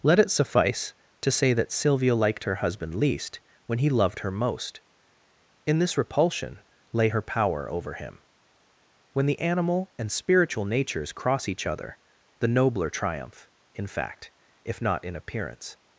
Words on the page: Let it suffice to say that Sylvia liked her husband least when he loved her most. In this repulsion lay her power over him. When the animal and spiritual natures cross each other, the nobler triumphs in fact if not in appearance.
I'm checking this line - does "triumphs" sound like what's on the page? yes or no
no